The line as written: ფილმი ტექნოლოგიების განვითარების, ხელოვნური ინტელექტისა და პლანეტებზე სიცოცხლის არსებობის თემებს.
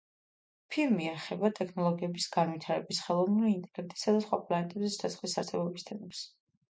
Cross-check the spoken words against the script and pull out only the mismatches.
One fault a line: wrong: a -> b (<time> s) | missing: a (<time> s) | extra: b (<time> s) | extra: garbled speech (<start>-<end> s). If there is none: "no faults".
extra: ეხება (1.1 s)
extra: სხვა (4.2 s)